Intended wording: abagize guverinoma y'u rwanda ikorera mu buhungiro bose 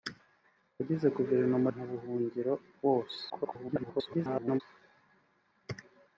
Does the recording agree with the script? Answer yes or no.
no